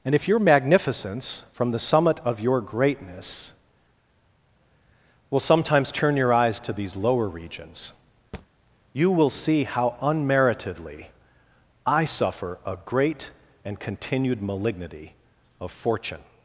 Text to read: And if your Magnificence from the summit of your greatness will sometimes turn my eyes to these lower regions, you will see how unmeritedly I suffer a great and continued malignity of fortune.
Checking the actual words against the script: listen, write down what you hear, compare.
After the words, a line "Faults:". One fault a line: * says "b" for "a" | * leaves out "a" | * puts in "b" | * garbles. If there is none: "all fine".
And if your Magnificence from the summit of your greatness will sometimes turn your eyes to these lower regions, you will see how unmeritedly I suffer a great and continued malignity of fortune.
Faults:
* says "your" for "my"